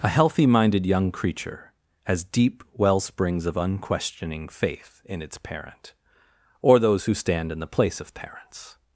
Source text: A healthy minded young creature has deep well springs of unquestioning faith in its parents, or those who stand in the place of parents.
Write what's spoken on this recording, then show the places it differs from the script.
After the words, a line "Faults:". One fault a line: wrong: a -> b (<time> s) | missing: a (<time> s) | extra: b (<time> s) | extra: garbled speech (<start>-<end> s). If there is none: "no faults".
A healthy minded young creature has deep well springs of unquestioning faith in its parent, or those who stand in the place of parents.
Faults:
wrong: parents -> parent (5.4 s)